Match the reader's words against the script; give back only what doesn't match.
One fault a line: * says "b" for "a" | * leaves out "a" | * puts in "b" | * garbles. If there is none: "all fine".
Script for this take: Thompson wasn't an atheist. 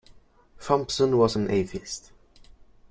* says "was" for "wasn't"